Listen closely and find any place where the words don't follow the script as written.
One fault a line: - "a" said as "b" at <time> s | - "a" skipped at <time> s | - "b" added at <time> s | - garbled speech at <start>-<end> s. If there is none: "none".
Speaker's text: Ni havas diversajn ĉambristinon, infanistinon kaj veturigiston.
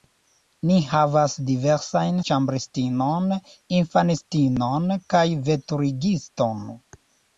none